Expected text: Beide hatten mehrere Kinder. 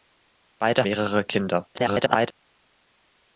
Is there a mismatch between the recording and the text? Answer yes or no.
yes